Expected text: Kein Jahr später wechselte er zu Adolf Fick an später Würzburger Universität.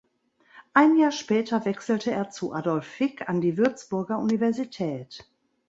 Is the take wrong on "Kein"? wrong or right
wrong